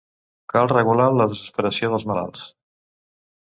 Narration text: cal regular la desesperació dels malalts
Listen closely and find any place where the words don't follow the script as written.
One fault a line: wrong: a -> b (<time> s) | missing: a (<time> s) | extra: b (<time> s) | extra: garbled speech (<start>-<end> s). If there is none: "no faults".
no faults